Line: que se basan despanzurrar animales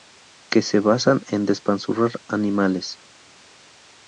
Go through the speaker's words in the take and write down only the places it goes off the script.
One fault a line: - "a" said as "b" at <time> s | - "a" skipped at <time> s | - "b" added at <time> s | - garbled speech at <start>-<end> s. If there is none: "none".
- "en" added at 1.3 s